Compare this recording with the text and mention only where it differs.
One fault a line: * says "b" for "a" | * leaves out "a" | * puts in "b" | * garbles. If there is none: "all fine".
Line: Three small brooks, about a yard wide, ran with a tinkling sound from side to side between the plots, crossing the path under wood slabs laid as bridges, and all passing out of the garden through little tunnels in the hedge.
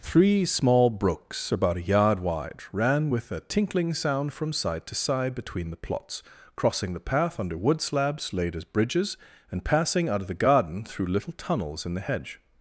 * leaves out "all"